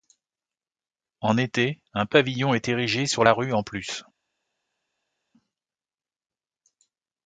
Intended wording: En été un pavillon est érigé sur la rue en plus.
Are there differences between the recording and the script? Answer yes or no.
no